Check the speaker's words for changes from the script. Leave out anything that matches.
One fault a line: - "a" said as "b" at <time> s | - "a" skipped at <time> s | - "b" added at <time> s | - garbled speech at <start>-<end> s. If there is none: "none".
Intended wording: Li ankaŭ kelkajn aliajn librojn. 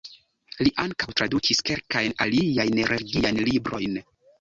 - "tradukis" added at 1.2 s
- "religiajn" added at 2.9 s